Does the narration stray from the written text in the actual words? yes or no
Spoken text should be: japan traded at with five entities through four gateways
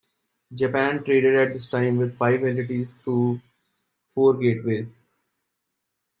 yes